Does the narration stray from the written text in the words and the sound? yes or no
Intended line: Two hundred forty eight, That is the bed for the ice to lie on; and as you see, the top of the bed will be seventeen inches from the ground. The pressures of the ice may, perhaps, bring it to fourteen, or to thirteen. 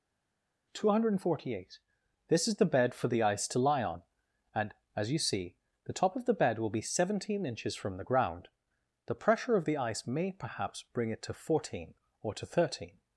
yes